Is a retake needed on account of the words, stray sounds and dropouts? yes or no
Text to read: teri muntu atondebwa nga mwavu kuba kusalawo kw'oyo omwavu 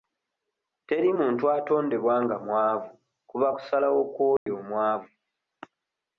yes